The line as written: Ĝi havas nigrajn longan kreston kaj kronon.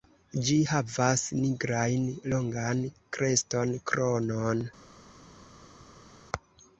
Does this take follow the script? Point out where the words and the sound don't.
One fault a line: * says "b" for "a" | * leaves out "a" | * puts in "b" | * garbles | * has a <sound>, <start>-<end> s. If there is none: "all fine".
* leaves out "kaj"